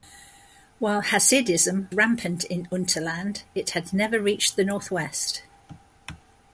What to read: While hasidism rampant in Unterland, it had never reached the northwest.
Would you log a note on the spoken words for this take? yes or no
no